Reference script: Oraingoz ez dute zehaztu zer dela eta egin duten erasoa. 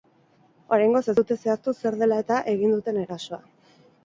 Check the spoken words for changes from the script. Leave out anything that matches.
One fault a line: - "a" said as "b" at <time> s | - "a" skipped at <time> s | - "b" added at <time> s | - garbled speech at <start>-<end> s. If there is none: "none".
none